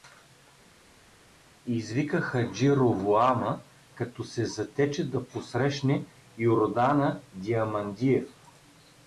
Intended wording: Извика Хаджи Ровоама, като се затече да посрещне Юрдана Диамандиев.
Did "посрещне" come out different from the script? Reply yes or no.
no